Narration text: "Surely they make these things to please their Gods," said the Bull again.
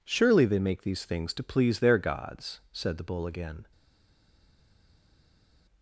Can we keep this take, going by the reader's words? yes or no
yes